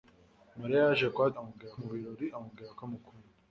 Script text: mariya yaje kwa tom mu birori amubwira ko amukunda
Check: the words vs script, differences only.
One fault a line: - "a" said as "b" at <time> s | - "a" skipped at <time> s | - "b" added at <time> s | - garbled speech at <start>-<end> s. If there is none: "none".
- "tom" said as "amubwira" at 1.4 s